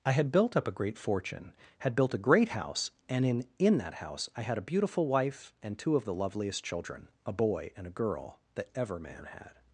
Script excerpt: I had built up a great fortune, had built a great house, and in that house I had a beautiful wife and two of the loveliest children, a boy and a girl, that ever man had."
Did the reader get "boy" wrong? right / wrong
right